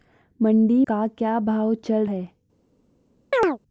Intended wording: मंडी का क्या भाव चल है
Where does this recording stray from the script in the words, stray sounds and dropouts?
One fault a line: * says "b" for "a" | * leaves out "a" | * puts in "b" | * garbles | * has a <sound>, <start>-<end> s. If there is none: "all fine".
* has a chirp, 3.3-3.6 s